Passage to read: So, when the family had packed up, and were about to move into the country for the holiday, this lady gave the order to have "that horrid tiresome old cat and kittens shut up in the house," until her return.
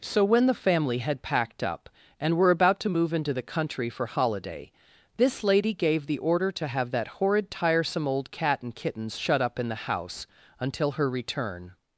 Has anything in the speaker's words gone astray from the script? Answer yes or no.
yes